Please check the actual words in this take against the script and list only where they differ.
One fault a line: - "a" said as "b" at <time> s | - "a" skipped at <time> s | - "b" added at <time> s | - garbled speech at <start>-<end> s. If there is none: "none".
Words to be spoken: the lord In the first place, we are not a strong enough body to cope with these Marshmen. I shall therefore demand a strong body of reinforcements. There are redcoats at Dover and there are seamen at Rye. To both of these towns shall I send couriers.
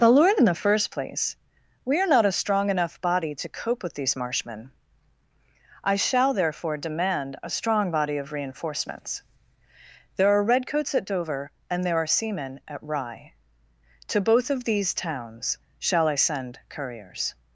none